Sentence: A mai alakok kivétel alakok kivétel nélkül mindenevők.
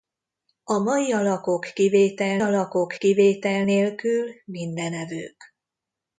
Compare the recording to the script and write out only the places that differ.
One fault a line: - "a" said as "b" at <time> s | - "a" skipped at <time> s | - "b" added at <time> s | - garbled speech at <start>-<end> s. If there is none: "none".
none